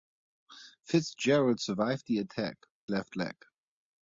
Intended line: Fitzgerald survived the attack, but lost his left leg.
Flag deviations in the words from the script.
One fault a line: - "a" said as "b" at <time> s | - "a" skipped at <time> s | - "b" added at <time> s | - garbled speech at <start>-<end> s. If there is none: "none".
- "but lost his" skipped at 2.6 s